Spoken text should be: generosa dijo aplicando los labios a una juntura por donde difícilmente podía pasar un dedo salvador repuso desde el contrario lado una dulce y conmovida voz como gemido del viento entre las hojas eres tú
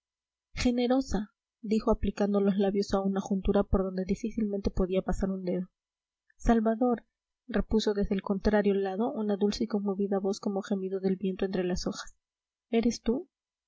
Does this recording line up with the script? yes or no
yes